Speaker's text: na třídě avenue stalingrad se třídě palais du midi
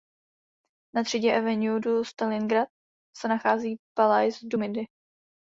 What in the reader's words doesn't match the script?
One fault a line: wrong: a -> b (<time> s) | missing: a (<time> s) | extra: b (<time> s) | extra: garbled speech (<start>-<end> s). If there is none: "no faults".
extra: du (1.8 s)
wrong: třídě -> nachází (3.3 s)